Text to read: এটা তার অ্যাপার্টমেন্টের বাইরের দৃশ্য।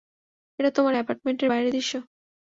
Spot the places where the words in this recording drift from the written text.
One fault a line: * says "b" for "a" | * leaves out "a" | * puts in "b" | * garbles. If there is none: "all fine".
* says "তোমার" for "তার"